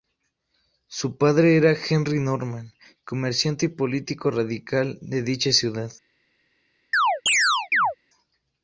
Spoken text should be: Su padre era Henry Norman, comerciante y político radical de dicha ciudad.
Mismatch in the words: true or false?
false